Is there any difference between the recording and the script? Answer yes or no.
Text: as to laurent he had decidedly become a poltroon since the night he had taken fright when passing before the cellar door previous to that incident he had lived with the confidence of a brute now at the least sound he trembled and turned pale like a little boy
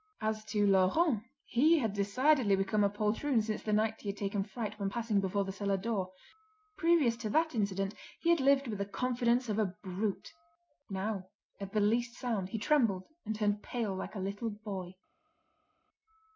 no